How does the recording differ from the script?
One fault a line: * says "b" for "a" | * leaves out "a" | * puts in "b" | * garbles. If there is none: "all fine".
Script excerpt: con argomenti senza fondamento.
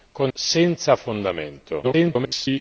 * leaves out "argomenti"
* garbles